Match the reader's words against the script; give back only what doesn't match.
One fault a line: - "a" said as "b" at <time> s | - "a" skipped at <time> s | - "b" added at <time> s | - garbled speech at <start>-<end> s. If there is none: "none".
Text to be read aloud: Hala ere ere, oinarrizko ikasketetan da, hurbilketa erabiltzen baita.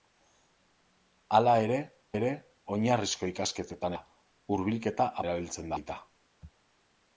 none